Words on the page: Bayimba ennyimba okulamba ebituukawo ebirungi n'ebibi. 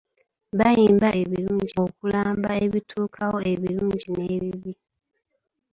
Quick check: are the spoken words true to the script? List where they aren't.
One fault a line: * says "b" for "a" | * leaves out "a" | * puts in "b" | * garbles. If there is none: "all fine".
* says "ebirungi" for "ennyimba"